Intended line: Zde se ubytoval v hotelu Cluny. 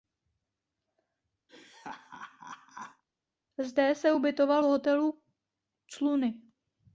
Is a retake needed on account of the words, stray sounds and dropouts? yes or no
yes